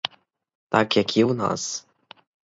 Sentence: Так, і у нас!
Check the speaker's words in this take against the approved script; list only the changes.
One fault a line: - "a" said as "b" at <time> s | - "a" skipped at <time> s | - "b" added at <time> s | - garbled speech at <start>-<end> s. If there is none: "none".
- "як" added at 1.0 s